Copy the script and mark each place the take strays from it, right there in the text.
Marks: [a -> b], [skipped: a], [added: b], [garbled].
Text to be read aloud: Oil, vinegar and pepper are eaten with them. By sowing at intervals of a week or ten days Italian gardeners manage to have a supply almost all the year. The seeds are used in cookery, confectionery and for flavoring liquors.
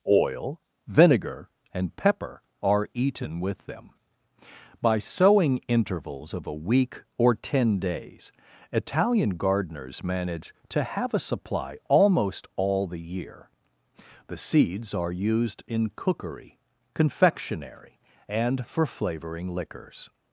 Oil, vinegar and pepper are eaten with them. By sowing [skipped: at] intervals of a week or ten days Italian gardeners manage to have a supply almost all the year. The seeds are used in cookery, confectionery and for flavoring liquors.